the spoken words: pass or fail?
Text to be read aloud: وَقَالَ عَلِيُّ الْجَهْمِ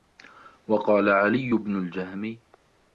fail